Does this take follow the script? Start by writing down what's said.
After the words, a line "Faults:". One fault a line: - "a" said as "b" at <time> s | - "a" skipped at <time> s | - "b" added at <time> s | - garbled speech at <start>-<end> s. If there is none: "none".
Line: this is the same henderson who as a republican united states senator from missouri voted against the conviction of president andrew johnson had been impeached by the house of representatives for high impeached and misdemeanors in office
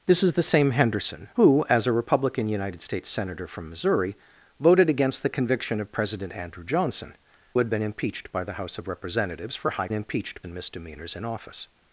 this is the same henderson who as a republican united states senator from missouri voted against the conviction of president andrew johnson had been impeached by the house of representatives for high impeached and misdemeanors in office
Faults:
none